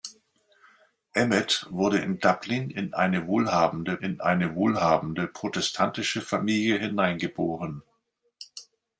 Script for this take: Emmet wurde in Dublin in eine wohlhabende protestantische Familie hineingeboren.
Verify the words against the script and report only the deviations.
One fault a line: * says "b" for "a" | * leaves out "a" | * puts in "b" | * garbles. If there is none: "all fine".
* puts in "in eine wohlhabende"